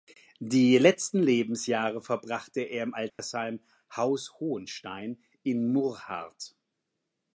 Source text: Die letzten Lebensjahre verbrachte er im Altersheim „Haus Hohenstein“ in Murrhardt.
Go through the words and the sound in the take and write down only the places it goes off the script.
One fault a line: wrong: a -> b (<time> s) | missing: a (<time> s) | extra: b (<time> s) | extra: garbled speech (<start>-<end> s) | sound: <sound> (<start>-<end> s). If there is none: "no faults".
sound: dropout (3.1-3.2 s)